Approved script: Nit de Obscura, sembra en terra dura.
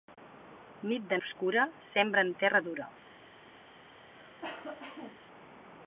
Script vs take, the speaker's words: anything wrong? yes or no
no